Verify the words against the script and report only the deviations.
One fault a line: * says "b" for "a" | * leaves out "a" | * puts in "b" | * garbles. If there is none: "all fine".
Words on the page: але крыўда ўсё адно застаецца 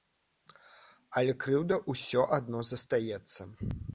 all fine